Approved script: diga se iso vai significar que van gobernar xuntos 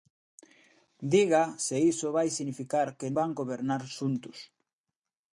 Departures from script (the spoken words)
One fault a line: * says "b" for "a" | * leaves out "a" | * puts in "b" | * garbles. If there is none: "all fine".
all fine